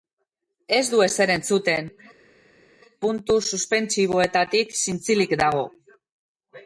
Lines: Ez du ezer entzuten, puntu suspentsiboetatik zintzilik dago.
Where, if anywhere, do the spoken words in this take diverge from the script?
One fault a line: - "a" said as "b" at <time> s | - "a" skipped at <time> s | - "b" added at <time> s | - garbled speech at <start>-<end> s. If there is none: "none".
none